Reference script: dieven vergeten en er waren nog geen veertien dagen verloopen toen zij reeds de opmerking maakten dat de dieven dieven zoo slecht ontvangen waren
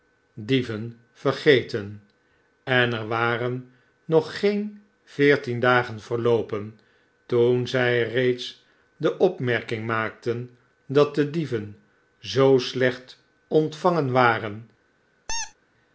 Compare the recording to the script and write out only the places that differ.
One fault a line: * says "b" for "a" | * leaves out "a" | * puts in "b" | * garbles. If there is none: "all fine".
* leaves out "dieven"